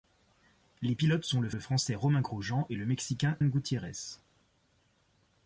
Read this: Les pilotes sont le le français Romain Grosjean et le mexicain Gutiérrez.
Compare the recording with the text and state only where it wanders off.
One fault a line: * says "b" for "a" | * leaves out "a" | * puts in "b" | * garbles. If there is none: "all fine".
all fine